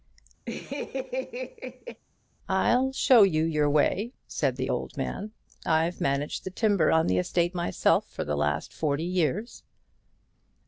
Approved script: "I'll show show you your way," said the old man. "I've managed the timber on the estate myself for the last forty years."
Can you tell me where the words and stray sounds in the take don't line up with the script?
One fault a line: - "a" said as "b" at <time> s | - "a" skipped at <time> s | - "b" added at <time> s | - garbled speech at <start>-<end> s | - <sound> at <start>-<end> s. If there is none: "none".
- laugh at 0.5-2.0 s
- "show" skipped at 3.2 s